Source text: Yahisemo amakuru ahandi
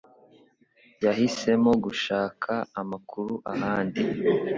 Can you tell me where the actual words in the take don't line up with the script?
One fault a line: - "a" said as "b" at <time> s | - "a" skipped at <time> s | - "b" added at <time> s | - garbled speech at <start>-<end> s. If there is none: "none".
- "gushaka" added at 1.8 s